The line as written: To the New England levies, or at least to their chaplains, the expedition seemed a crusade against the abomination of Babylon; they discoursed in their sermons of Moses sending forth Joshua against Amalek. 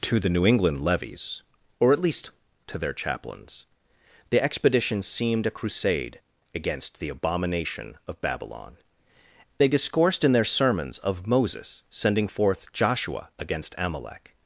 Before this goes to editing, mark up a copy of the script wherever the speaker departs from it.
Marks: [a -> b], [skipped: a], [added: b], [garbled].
To the New England levies, or at least to their chaplains, the expedition seemed a crusade against the abomination of Babylon; they discoursed in their sermons of Moses sending forth Joshua against Amalek.